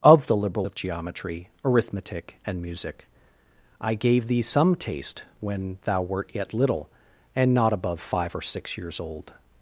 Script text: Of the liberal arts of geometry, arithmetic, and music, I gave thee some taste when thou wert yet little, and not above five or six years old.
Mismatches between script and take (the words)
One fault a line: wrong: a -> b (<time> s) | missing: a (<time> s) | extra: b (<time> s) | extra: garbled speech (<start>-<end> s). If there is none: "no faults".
missing: arts (0.7 s)